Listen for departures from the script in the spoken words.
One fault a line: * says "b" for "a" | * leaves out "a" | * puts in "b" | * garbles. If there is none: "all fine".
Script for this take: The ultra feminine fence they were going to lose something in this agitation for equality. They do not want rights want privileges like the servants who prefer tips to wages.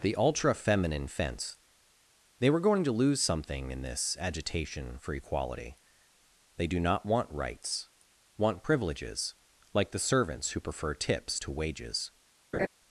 all fine